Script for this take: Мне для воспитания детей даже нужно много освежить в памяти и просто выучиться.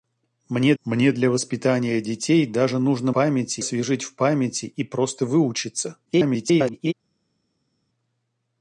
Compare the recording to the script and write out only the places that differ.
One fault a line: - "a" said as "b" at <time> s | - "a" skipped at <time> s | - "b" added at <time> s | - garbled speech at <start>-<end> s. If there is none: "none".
- "мне" added at 0.8 s
- "много" said as "памяти" at 3.1 s
- garbled speech at 6.1-6.9 s